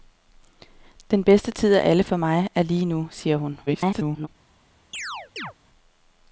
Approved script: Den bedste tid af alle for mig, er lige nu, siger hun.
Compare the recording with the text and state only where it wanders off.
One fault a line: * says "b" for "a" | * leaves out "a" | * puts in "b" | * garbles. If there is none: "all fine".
* garbles